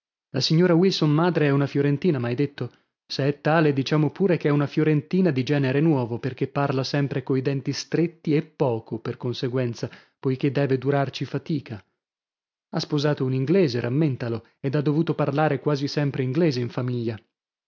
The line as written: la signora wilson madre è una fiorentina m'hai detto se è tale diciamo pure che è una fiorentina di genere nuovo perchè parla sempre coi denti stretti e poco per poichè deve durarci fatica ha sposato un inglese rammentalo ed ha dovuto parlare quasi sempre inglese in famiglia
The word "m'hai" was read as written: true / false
true